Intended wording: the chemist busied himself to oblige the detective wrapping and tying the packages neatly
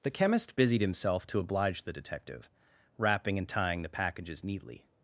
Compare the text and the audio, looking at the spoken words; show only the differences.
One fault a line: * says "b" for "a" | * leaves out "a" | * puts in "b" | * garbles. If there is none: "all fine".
all fine